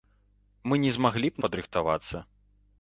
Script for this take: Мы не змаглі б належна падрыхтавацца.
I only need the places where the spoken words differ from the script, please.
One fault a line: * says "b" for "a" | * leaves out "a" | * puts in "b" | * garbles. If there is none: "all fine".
* leaves out "належна"